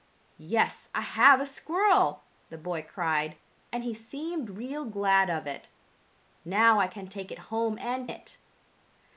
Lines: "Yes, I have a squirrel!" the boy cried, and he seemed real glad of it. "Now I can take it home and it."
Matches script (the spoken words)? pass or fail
pass